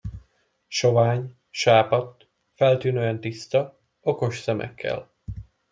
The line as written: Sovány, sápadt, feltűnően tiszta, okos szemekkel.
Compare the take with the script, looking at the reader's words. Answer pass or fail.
pass